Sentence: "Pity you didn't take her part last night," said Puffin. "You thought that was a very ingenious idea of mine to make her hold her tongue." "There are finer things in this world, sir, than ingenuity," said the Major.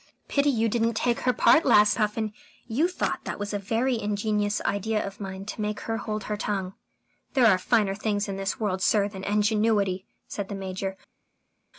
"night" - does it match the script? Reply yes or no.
no